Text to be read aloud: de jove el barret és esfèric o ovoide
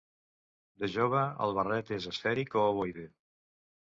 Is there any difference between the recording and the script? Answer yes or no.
no